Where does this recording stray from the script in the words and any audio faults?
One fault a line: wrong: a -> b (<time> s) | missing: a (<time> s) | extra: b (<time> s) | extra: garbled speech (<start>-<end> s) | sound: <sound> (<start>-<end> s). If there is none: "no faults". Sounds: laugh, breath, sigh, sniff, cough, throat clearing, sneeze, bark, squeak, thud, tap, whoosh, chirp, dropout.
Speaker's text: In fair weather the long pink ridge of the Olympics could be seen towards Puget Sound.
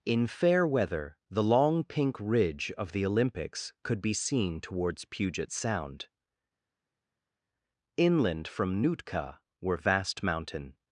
extra: Inland from Nootka were vast mountain (8.0 s)